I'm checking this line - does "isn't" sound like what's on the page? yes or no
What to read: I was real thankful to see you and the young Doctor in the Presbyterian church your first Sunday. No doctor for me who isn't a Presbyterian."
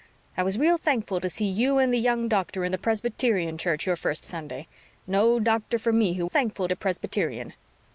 no